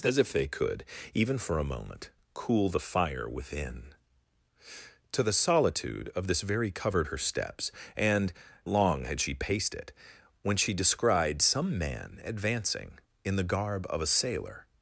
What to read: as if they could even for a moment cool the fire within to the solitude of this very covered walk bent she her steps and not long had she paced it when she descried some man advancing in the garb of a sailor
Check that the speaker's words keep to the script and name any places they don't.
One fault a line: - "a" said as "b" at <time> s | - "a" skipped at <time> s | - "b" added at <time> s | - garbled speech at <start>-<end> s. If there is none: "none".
- "walk bent she" skipped at 7.1 s
- "not" skipped at 8.3 s